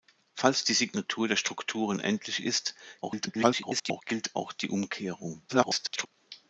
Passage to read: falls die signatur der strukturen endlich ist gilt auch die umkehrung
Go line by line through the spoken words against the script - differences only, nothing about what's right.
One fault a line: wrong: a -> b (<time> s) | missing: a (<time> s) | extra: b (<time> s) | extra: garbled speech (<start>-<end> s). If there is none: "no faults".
extra: garbled speech (3.0-4.0 s)
extra: garbled speech (5.5-6.1 s)